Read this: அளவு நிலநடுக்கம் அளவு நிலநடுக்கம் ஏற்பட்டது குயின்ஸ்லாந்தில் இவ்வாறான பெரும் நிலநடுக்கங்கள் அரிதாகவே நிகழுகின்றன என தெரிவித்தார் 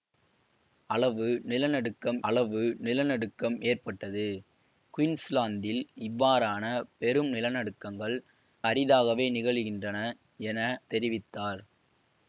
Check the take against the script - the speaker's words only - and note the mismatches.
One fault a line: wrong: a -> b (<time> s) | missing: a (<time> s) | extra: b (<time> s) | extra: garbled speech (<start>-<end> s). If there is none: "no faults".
no faults